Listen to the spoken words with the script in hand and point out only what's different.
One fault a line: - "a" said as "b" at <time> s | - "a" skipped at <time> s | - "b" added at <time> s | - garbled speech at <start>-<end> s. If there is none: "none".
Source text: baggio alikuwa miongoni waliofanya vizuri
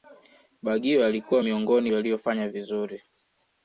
none